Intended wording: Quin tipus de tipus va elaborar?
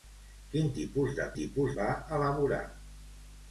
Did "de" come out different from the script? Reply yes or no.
no